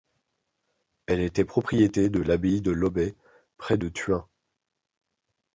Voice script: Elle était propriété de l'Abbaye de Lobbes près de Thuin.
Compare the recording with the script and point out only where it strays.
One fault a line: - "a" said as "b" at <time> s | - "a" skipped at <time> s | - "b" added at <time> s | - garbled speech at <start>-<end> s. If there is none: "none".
none